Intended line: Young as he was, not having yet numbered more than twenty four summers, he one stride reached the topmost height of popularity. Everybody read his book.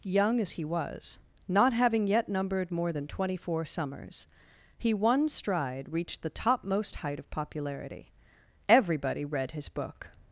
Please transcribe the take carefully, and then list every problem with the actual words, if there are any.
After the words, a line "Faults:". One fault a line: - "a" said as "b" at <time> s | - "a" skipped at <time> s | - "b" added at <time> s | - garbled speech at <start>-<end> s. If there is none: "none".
Young as he was, not having yet numbered more than twenty four summers, he one stride reached the topmost height of popularity. Everybody read his book.
Faults:
none